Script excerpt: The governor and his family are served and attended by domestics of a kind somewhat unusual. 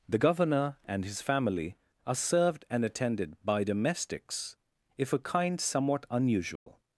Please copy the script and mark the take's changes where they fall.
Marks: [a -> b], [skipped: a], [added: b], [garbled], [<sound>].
The governor and his family are served and attended by domestics [of -> if] a kind somewhat unusual. [dropout]